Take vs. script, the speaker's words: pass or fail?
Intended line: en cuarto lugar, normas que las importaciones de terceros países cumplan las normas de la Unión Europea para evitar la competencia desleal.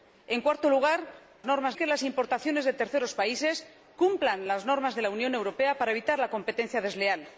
pass